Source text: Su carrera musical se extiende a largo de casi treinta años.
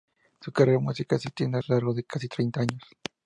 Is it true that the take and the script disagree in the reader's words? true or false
false